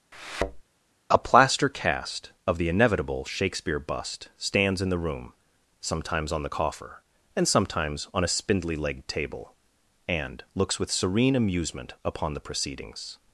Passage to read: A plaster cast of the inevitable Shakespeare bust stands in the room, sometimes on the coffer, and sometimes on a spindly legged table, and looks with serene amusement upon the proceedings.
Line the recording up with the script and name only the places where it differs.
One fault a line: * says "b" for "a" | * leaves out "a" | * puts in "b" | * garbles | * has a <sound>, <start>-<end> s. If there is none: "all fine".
* has a thud, 0.1-0.6 s